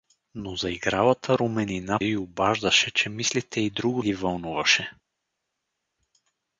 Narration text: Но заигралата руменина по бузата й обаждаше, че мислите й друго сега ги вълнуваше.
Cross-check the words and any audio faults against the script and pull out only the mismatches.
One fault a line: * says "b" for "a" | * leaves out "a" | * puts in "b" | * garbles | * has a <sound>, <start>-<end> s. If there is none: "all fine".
* leaves out "по бузата"
* leaves out "сега"